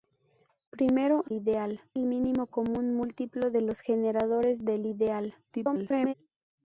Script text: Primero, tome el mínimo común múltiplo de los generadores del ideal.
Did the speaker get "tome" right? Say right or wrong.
wrong